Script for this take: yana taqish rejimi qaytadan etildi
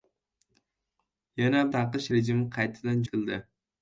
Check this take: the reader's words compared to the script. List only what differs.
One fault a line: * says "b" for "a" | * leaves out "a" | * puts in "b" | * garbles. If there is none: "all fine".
all fine